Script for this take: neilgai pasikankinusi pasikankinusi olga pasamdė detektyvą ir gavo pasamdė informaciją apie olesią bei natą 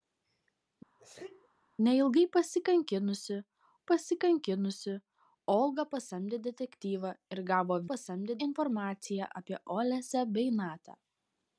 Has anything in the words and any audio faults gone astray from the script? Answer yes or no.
yes